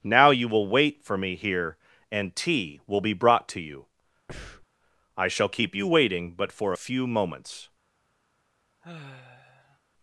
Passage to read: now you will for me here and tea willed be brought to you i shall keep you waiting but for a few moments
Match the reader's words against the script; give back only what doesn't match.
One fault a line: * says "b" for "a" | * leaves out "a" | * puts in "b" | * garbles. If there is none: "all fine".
* puts in "wait"
* says "will" for "willed"